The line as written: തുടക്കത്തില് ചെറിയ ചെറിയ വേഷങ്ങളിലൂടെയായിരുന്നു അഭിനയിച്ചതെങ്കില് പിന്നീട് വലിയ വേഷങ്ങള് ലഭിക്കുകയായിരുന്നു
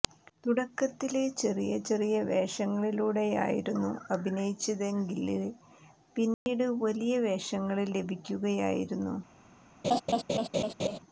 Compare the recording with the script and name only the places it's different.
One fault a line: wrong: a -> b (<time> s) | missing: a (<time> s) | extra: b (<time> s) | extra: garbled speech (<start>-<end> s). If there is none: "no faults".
no faults